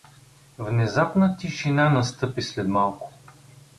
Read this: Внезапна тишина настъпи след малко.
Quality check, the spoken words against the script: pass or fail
pass